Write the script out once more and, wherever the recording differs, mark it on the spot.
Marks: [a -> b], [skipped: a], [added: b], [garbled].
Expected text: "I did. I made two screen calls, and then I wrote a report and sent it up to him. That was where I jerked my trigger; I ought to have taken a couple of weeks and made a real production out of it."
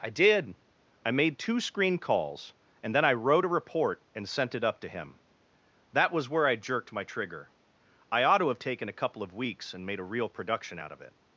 "I did. I made two screen calls, and then I wrote a report and sent it up to him. That was where I jerked my trigger; I ought to have taken a couple of weeks and made a real production out of it."